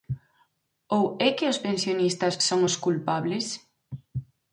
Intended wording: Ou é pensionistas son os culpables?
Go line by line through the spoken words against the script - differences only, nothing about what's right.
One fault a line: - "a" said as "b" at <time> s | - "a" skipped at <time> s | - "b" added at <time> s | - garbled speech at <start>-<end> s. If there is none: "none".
- "que os" added at 1.4 s